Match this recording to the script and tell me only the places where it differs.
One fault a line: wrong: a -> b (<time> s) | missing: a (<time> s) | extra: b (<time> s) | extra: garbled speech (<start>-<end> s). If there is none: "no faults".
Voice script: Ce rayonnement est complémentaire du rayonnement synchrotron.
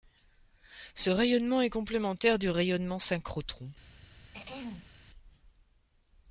no faults